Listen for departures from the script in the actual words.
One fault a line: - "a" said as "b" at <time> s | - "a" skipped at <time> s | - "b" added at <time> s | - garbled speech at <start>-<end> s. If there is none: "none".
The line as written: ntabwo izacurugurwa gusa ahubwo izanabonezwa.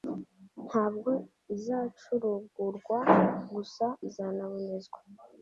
- "ahubwo" skipped at 3.9 s